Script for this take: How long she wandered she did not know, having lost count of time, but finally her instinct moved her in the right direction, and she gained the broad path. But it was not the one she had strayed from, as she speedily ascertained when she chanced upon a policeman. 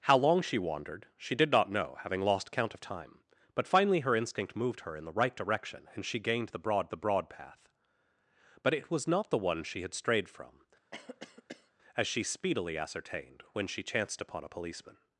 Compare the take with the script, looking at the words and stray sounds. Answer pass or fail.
fail